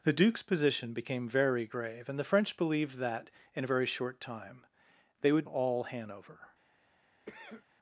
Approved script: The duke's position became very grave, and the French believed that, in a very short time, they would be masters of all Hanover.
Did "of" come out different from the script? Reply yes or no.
yes